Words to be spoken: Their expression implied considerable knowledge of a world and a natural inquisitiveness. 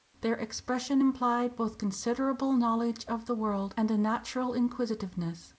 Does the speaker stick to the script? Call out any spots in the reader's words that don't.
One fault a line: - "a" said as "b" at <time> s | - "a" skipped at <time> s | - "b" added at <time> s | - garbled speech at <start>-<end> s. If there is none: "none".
- "both" added at 1.6 s
- "a" said as "the" at 3.3 s